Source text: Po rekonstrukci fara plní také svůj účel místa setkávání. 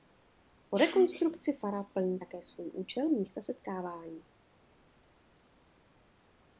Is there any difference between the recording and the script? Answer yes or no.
no